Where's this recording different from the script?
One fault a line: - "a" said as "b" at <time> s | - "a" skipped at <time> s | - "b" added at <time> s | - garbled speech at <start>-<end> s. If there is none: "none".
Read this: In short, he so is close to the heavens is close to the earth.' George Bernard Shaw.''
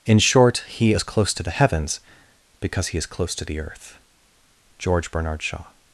- "so" skipped at 0.9 s
- "because he" added at 2.6 s